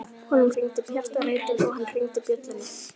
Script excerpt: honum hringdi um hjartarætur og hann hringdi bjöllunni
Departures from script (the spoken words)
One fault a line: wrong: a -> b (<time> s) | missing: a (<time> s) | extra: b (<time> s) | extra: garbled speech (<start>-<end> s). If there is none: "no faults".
no faults